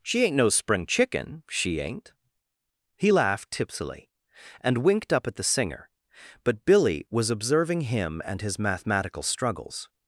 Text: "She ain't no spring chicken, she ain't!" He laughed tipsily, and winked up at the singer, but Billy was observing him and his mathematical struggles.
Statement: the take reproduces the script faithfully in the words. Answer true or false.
true